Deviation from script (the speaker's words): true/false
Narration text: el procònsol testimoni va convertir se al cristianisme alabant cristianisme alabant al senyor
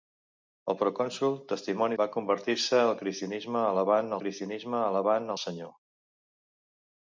false